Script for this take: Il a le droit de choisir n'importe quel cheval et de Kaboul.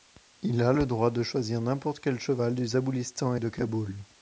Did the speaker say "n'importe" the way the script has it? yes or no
yes